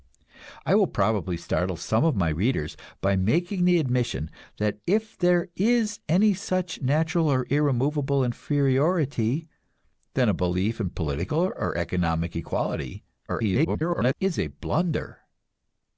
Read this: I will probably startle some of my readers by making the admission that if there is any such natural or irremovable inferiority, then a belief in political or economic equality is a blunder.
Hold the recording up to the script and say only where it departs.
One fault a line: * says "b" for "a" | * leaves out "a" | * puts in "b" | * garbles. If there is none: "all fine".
* garbles